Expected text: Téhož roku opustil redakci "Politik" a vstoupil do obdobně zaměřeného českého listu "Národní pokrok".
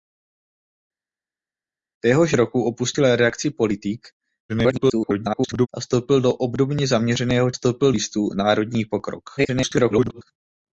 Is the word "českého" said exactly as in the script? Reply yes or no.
no